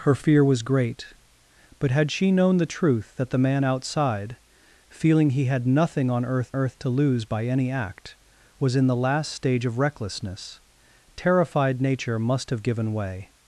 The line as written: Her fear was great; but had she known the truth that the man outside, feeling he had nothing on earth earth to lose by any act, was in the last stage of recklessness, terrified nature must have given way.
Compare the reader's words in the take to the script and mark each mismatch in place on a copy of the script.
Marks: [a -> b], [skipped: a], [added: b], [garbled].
Her fear was great; but had she known the truth that the man outside, feeling he had nothing on earth earth to lose by any act, was in the last stage of recklessness, terrified nature must have given way.